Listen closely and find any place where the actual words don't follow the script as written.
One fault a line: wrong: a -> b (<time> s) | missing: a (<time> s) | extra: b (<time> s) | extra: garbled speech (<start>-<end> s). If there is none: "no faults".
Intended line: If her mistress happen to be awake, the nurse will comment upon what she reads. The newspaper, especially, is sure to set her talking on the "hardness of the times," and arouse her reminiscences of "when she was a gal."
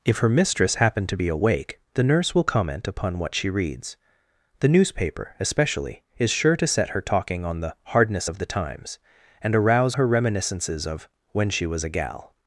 no faults